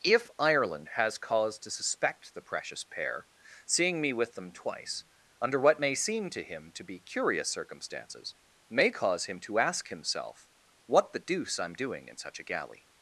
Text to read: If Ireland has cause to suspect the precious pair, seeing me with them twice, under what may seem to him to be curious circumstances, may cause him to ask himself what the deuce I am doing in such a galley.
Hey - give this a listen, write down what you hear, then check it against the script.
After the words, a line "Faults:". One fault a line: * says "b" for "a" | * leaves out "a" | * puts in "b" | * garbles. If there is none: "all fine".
If Ireland has cause to suspect the precious pair, seeing me with them twice, under what may seem to him to be curious circumstances, may cause him to ask himself what the deuce I am doing in such a galley.
Faults:
all fine